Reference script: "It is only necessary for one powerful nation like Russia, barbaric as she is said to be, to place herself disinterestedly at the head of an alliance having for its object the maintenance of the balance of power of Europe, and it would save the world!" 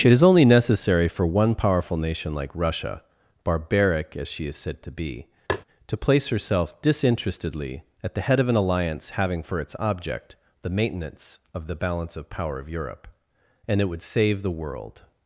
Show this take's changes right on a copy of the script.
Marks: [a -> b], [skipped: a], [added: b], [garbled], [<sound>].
"It is only necessary for one powerful nation like Russia, barbaric as she is said to be, [tap] to place herself disinterestedly at the head of an alliance having for its object the maintenance of the balance of power of Europe, and it would save the world!"